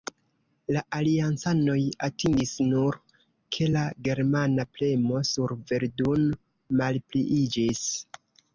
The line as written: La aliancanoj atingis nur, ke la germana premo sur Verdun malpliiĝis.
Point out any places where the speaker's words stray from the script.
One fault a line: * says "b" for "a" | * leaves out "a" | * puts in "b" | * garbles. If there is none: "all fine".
all fine